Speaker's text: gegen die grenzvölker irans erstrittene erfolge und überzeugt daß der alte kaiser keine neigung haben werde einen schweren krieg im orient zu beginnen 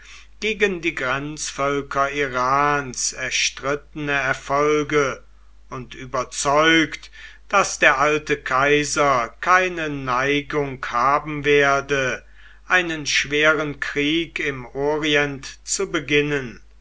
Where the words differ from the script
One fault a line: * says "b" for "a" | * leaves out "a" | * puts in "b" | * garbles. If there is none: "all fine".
all fine